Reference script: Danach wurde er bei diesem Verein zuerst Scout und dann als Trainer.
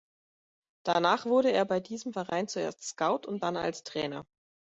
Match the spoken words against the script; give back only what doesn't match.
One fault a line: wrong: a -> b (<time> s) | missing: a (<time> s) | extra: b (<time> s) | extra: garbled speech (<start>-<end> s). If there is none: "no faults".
no faults